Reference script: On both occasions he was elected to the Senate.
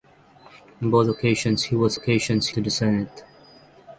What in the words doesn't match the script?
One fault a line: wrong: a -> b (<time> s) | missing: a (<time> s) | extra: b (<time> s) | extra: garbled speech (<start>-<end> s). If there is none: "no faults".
wrong: elected -> occasions (1.9 s)